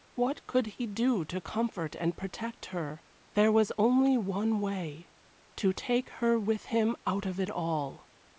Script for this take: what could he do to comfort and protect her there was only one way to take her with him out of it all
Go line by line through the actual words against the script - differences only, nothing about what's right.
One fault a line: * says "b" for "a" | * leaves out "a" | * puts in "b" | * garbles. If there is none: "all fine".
all fine